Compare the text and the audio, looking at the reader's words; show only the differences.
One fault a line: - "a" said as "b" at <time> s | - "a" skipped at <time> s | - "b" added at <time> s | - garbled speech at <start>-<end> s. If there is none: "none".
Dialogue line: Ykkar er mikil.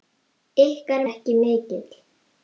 none